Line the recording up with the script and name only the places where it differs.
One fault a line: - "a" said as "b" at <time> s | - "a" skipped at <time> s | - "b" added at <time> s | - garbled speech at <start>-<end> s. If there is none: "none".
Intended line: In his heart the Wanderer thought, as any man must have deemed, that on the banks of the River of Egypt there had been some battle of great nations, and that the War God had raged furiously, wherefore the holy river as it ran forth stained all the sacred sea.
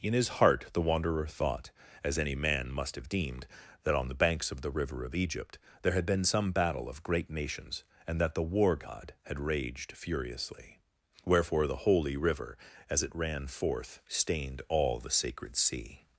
none